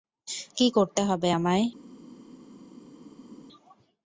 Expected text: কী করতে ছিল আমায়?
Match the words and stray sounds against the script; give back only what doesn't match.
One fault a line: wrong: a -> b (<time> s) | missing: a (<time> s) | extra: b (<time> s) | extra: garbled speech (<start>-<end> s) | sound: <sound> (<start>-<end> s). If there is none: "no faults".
wrong: ছিল -> হবে (1.0 s)